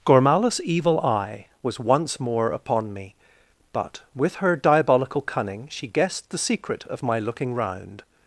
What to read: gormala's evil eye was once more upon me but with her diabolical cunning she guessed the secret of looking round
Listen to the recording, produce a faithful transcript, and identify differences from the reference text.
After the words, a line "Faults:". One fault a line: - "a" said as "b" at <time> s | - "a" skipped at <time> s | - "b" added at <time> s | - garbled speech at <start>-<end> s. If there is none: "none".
gormala's evil eye was once more upon me but with her diabolical cunning she guessed the secret of my looking round
Faults:
- "my" added at 7.0 s